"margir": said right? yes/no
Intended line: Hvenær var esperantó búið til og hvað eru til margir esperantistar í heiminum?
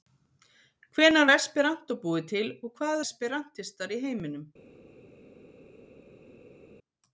no